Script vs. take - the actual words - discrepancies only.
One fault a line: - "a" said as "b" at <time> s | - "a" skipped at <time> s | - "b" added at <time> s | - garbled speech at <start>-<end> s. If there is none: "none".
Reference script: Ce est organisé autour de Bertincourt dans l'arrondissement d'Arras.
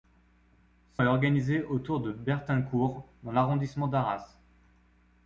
none